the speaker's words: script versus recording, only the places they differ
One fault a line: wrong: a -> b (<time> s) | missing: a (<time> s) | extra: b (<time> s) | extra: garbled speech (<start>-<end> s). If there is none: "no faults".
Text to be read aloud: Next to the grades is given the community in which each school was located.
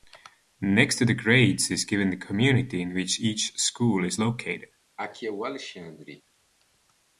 wrong: was -> is (4.0 s)